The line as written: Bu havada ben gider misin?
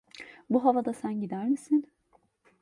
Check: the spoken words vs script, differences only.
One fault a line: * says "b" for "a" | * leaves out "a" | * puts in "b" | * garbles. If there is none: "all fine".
* says "sen" for "ben"